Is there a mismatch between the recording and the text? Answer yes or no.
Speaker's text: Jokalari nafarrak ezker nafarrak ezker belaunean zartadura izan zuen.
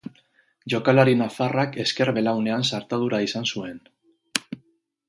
yes